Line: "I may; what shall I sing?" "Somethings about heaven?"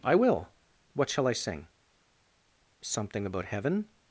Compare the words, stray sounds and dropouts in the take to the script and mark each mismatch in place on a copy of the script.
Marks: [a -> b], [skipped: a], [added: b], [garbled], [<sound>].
"I [may; -> will] what shall I sing?" ["Somethings -> Something] about heaven?"